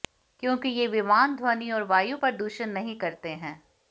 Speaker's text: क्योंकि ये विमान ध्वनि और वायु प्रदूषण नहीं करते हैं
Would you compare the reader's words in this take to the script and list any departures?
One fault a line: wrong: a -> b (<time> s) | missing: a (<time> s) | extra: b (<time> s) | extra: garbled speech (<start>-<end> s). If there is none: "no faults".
no faults